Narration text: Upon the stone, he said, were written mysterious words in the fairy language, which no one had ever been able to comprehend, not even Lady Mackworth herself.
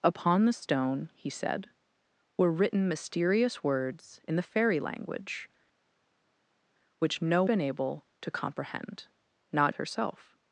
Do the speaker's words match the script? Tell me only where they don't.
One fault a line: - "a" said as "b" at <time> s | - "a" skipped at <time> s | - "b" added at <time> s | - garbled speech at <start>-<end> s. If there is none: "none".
- "one had ever" skipped at 7.4 s
- "even Lady Mackworth" skipped at 9.7 s